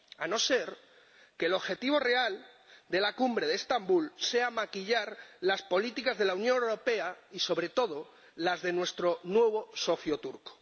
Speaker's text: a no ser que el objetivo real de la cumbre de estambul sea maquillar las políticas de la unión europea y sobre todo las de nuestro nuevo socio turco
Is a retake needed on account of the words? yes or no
no